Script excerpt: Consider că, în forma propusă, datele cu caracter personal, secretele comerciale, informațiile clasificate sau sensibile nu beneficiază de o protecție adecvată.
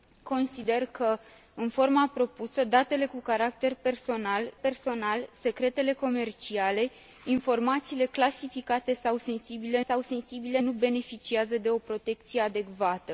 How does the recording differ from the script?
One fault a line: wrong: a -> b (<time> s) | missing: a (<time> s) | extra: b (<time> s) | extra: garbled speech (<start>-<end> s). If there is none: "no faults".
extra: personal (4.6 s)
extra: sau sensibile (9.8 s)